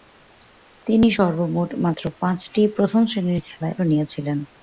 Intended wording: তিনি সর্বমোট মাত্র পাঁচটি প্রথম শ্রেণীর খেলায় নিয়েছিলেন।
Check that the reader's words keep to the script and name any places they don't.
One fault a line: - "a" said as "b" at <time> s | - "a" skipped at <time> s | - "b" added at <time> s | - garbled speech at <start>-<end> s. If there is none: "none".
none